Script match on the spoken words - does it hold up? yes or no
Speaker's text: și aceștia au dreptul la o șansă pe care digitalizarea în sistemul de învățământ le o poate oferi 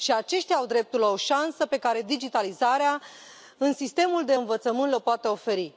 yes